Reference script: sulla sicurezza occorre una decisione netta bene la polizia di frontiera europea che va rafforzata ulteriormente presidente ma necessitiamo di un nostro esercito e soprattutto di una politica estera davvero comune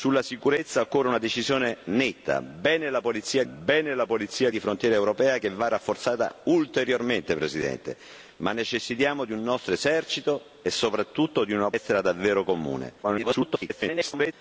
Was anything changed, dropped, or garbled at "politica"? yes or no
yes